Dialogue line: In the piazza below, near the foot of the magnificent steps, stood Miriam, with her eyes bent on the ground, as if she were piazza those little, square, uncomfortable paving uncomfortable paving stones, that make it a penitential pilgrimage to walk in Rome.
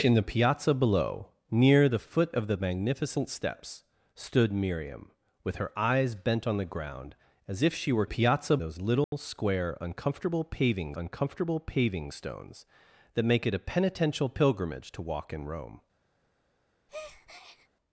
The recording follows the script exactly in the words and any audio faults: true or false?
false